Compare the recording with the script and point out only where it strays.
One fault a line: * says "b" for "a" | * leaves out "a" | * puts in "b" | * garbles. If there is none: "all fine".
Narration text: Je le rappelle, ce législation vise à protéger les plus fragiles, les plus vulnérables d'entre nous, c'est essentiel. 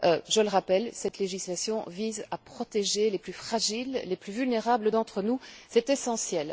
* says "cette" for "ce"